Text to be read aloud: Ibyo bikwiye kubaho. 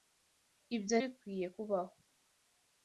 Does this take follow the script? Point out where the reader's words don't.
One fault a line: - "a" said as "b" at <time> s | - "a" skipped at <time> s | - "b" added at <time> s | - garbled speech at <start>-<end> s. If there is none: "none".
none